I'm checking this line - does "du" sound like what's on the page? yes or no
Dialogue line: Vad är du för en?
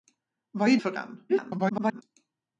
no